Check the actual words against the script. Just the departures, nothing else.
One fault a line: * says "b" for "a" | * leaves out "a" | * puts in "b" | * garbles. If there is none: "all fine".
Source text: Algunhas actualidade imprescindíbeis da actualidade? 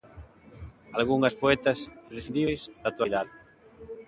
* says "poetas" for "actualidade"